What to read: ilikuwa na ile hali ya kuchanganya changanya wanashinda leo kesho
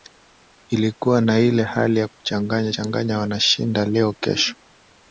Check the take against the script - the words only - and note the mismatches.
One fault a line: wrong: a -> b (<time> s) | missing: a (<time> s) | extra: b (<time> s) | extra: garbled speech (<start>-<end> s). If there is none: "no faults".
no faults